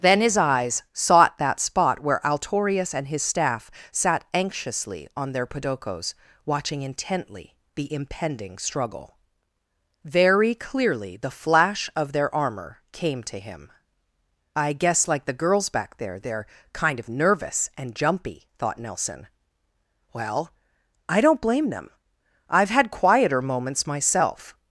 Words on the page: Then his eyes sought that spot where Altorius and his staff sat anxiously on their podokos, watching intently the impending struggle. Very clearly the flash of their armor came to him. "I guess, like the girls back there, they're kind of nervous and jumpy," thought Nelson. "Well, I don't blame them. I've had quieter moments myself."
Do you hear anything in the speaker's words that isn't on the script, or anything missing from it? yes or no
no